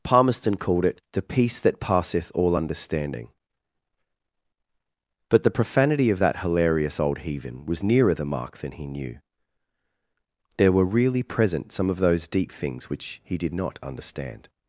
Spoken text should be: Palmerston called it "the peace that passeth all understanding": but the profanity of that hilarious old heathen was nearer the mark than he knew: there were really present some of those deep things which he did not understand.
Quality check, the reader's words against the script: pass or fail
pass